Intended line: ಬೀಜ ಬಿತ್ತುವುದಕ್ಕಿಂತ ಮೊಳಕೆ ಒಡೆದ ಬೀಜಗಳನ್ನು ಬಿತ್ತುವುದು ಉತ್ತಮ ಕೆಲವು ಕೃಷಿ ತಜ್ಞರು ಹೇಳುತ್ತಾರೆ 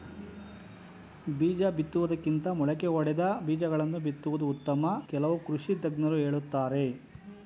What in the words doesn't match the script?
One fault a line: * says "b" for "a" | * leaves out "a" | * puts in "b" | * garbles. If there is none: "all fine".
all fine